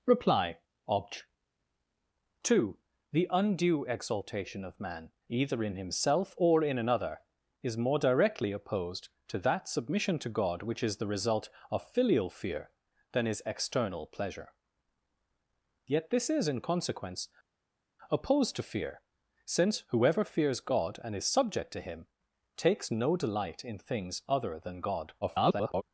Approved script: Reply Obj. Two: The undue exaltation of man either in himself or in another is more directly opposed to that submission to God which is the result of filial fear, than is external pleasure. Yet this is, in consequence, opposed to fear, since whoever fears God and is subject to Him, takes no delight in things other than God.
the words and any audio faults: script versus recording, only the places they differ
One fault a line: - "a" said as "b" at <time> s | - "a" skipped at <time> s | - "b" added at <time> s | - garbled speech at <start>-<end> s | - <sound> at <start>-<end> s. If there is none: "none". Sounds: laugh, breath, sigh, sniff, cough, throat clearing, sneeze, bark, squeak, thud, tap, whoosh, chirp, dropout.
- garbled speech at 25.2-25.8 s